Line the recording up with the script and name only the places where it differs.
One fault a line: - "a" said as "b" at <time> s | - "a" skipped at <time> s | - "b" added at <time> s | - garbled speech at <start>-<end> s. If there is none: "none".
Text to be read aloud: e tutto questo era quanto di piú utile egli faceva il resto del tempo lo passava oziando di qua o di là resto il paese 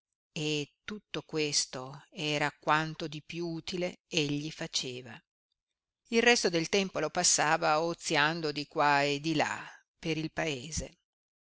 - "o" said as "e" at 9.0 s
- "resto" said as "per" at 10.0 s